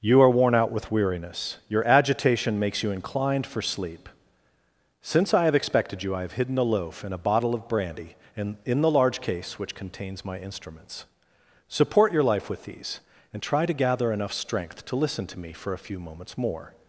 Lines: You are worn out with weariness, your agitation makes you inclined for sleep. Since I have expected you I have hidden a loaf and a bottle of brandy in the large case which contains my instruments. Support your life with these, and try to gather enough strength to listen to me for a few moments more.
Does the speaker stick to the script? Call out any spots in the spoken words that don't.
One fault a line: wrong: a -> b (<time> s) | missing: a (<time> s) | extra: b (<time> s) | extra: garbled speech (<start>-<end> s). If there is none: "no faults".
extra: in (8.6 s)